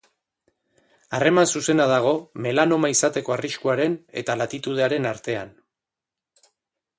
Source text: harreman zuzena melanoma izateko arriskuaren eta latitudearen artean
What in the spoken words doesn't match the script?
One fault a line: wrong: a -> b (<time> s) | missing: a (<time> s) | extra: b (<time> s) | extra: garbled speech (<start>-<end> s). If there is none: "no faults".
extra: dago (1.9 s)